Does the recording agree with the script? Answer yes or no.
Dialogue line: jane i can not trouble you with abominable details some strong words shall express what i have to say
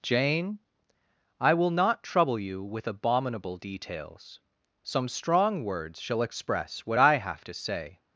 no